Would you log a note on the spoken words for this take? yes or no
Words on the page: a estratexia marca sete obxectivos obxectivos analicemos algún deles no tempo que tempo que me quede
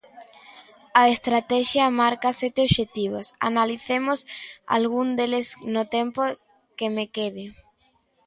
yes